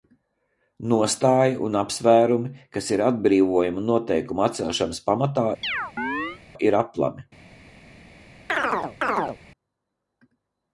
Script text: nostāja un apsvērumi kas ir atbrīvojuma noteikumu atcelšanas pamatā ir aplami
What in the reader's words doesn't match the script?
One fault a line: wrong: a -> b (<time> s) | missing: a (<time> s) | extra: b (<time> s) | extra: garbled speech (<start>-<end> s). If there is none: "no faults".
no faults